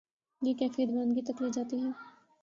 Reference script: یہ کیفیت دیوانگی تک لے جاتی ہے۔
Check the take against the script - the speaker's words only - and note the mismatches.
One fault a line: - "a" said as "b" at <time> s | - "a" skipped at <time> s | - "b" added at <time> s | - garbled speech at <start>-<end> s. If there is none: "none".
none